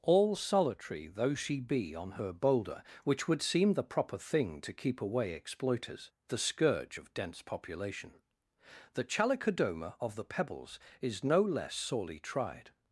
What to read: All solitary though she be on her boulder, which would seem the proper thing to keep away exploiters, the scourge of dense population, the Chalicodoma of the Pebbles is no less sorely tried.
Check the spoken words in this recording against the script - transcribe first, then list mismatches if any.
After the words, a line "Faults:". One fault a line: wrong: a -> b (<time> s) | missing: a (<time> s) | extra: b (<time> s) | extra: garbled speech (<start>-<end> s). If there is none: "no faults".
All solitary though she be on her boulder, which would seem the proper thing to keep away exploiters, the scourge of dense population, the Chalicodoma of the Pebbles is no less sorely tried.
Faults:
no faults